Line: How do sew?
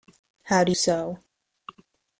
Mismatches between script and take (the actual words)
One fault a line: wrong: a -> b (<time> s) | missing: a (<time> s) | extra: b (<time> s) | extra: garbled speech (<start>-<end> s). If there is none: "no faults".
no faults